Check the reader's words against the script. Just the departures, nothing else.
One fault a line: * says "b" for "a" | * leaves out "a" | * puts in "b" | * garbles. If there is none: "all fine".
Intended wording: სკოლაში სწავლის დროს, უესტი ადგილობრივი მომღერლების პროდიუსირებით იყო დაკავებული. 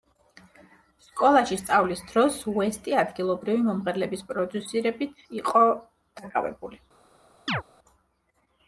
all fine